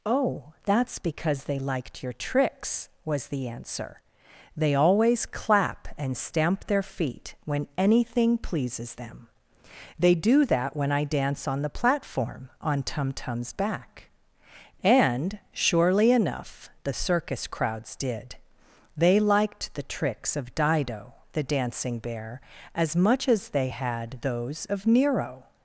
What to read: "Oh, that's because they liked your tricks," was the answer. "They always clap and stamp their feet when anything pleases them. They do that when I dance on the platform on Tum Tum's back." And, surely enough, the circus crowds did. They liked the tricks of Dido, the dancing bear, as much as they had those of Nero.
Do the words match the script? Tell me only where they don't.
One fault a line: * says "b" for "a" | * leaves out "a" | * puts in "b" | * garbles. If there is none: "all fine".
all fine